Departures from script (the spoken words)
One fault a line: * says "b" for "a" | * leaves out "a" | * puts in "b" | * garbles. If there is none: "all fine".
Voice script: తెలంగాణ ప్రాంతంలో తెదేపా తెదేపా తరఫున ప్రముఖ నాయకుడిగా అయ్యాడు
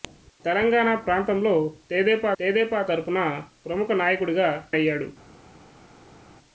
all fine